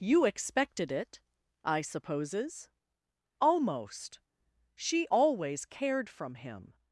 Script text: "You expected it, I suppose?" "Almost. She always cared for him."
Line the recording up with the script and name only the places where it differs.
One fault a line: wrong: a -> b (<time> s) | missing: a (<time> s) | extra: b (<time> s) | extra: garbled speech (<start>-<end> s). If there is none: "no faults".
wrong: suppose -> supposes (1.8 s)
wrong: for -> from (6.1 s)